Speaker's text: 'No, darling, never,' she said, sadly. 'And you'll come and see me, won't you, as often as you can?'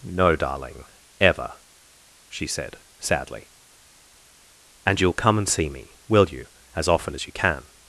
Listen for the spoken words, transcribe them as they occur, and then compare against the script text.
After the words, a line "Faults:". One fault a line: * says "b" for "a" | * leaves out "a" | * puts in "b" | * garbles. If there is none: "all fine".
'No, darling, ever,' she said, sadly. 'And you'll come and see me, will you, as often as you can?'
Faults:
* says "ever" for "never"
* says "will" for "won't"